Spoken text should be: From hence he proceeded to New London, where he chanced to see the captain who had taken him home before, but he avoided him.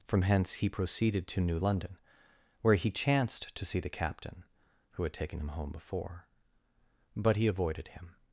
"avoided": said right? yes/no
yes